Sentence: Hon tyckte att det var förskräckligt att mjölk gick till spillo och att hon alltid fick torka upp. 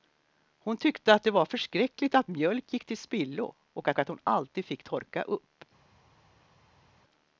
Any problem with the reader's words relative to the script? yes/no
yes